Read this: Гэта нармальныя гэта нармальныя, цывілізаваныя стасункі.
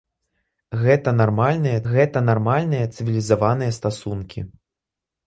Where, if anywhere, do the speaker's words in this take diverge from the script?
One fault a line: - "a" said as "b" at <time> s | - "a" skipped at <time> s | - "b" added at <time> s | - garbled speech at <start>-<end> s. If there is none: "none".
none